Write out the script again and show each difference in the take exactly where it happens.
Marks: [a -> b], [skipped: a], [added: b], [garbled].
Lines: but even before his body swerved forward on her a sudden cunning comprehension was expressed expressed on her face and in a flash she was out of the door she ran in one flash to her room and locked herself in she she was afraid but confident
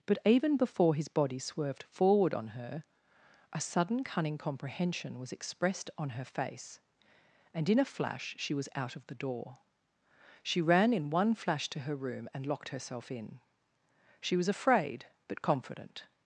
but even before his body swerved forward on her a sudden cunning comprehension was expressed [skipped: expressed] on her face and in a flash she was out of the door she ran in one flash to her room and locked herself in she [skipped: she] was afraid but confident